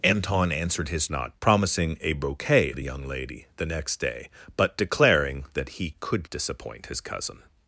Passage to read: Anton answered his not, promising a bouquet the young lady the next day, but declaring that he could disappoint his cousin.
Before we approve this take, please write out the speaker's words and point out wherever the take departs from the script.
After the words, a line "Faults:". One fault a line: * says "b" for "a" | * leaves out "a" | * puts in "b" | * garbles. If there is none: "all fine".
Anton answered his not, promising a bouquet the young lady the next day, but declaring that he could disappoint his cousin.
Faults:
all fine